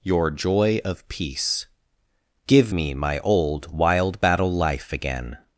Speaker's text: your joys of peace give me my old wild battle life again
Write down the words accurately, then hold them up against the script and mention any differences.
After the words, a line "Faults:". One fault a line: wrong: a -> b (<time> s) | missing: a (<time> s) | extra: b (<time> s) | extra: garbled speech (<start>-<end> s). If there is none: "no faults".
your joy of peace give me my old wild battle life again
Faults:
wrong: joys -> joy (0.3 s)